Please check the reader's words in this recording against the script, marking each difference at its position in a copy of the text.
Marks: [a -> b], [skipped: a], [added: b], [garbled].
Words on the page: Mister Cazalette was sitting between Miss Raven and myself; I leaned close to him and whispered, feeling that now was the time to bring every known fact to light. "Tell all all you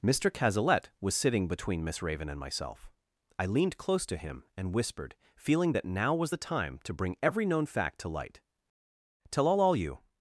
Mister Cazalette was sitting between Miss Raven and myself; I leaned close to him and whispered, feeling that now was the time to bring every known fact to light. "Tell all all you